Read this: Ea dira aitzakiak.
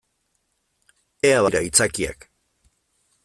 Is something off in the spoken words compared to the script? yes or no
no